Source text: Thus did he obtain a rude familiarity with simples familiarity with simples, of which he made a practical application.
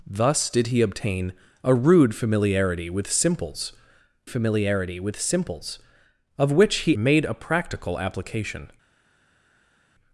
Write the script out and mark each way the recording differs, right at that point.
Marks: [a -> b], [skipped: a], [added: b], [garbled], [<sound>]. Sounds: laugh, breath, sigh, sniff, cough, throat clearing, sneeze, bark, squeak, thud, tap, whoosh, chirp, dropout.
Thus did he obtain a rude familiarity with simples familiarity with simples, of which he made a practical application.